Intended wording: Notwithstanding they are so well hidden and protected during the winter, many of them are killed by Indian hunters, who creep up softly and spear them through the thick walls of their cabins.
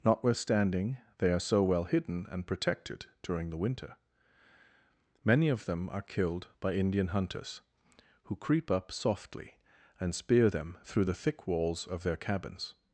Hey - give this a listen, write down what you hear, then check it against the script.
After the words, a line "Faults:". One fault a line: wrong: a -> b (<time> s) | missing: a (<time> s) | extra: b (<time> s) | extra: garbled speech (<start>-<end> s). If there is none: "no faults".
Notwithstanding they are so well hidden and protected during the winter, many of them are killed by Indian hunters, who creep up softly and spear them through the thick walls of their cabins.
Faults:
no faults